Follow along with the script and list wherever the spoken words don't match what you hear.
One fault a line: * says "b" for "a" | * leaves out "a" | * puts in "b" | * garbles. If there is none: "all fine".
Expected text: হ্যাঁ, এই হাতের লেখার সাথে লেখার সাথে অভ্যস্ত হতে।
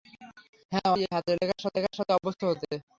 all fine